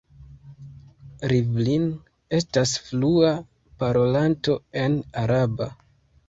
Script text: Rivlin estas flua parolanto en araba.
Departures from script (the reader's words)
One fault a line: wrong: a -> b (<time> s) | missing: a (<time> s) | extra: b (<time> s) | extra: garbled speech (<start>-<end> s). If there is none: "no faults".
no faults